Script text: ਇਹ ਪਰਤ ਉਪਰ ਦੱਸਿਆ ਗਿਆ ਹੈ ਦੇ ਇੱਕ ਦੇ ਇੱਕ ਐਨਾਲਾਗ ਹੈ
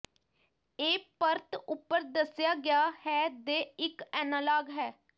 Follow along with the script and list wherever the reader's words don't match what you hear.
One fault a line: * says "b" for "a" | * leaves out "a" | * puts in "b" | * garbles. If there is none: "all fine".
* leaves out "ਦੇ ਇੱਕ"